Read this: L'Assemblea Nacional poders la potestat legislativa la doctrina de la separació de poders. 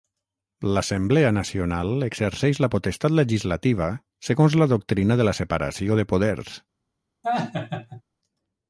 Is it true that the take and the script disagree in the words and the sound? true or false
true